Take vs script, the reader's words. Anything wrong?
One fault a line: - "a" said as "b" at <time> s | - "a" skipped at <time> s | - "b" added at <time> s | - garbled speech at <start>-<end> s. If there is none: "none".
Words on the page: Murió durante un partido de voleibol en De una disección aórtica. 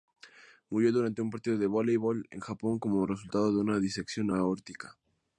- "Japón como resultado" added at 2.4 s